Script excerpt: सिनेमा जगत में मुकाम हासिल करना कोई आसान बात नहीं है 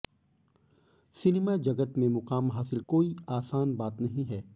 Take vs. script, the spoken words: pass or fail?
fail